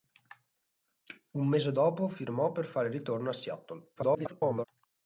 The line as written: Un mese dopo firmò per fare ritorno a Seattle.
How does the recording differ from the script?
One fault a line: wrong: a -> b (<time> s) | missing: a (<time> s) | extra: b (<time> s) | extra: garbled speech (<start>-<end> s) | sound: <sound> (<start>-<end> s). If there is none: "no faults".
extra: garbled speech (4.0-4.7 s)